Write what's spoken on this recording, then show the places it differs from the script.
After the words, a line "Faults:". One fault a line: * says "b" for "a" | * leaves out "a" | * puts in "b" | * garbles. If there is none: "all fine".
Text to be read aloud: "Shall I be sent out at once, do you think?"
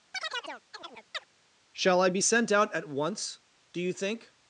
"Shall I be sent out at once, do you think?"
Faults:
all fine